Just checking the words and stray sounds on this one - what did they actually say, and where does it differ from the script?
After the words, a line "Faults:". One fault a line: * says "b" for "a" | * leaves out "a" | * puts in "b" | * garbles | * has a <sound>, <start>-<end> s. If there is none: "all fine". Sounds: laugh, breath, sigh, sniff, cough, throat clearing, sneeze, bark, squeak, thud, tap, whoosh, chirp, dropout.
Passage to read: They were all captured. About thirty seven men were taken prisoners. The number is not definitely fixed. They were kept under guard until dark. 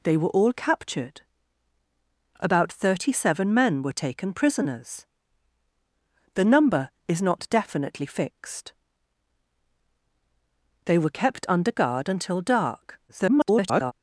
They were all captured. About thirty seven men were taken prisoners. The number is not definitely fixed. They were kept under guard until dark. [garbled]
Faults:
* garbles